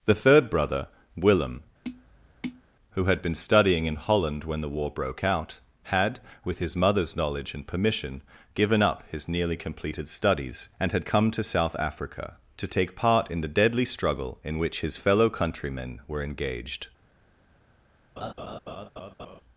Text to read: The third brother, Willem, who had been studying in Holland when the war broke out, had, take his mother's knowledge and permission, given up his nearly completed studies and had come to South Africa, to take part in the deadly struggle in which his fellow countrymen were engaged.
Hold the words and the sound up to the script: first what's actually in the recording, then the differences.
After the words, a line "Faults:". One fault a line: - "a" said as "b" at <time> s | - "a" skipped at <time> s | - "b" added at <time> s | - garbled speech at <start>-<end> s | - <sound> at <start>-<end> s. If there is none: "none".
The third brother, Willem, who had been studying in Holland when the war broke out, had, with his mother's knowledge and permission, given up his nearly completed studies and had come to South Africa, to take part in the deadly struggle in which his fellow countrymen were engaged.
Faults:
- tap at 1.8-2.6 s
- "take" said as "with" at 6.4 s
- laugh at 18.2-19.4 s